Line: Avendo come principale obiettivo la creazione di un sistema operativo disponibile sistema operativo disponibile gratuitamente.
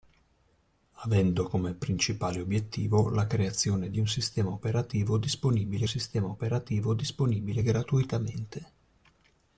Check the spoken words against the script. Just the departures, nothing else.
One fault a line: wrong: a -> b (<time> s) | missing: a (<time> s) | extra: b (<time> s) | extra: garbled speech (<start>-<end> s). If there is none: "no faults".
no faults